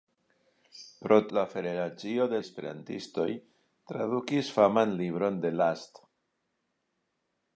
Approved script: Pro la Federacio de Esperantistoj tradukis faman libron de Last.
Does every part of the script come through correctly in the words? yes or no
yes